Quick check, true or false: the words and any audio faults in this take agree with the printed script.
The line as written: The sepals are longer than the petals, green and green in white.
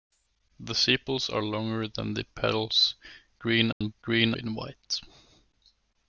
false